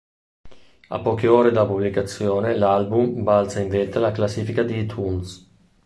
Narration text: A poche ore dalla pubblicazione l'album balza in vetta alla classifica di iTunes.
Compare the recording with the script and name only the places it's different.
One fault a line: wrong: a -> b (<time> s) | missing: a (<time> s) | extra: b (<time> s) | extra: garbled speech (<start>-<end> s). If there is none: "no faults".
no faults